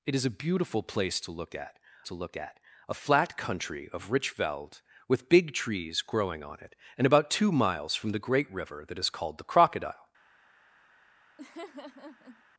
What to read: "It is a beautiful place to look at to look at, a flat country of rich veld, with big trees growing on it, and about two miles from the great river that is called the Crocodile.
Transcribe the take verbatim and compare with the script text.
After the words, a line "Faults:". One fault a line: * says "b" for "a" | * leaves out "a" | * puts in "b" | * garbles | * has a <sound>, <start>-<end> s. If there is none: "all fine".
"It is a beautiful place to look at to look at, a flat country of rich veld, with big trees growing on it, and about two miles from the great river that is called the Crocodile.
Faults:
* has a laugh, 11.4-12.4 s